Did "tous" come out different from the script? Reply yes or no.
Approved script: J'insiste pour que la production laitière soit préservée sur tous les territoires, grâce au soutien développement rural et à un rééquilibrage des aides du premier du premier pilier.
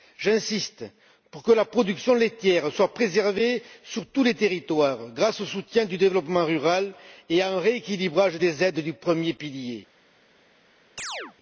no